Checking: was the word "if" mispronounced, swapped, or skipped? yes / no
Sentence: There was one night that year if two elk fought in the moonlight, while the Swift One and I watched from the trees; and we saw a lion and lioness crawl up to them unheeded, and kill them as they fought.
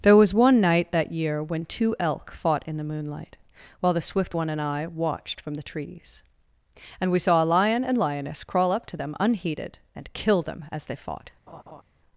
yes